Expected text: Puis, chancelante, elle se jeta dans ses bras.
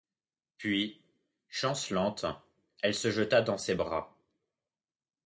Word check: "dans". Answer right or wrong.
right